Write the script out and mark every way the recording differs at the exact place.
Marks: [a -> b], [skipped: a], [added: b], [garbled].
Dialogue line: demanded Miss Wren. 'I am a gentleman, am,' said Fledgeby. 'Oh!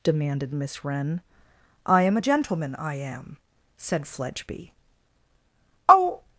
demanded Miss Wren. 'I am a gentleman, [added: I] am,' said Fledgeby. 'Oh!